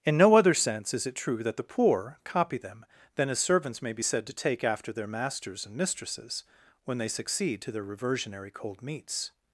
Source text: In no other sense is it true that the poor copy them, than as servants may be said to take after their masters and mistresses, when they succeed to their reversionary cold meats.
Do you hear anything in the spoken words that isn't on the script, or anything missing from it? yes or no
no